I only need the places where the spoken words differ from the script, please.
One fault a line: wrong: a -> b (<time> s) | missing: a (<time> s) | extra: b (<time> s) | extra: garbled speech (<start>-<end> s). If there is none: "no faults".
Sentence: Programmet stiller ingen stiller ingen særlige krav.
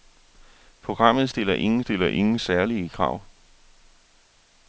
no faults